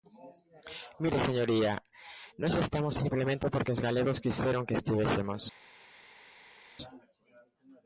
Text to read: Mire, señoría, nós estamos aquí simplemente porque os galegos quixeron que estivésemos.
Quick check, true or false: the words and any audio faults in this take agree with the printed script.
false